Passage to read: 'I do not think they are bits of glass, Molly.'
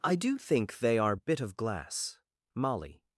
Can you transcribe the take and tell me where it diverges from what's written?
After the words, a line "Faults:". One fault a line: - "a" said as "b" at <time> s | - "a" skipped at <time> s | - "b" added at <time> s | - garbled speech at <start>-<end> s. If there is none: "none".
'I do think they are bit of glass, Molly.'
Faults:
- "not" skipped at 0.4 s
- "bits" said as "bit" at 1.1 s